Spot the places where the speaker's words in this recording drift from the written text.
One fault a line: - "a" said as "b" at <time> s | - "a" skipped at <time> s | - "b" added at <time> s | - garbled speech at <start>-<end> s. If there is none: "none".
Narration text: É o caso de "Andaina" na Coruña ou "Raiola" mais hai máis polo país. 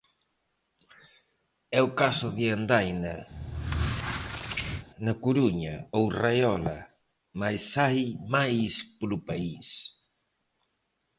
none